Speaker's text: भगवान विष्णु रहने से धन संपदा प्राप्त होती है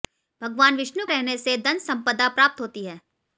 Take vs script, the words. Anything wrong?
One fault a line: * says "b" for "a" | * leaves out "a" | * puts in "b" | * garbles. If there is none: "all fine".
all fine